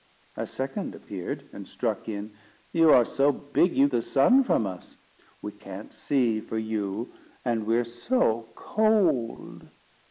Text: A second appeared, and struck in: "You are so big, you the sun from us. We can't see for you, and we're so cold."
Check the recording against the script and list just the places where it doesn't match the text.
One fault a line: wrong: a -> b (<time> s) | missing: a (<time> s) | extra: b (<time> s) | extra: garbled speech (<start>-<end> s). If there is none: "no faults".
no faults